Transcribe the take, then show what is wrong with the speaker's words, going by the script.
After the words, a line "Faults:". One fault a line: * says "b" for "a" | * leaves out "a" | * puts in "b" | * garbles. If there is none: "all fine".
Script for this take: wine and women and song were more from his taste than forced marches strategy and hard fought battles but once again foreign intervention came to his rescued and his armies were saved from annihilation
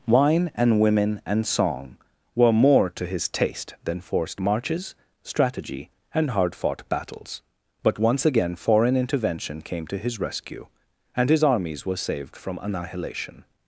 wine and women and song were more to his taste than forced marches strategy and hard fought battles but once again foreign intervention came to his rescue and his armies were saved from annihilation
Faults:
* says "to" for "from"
* says "rescue" for "rescued"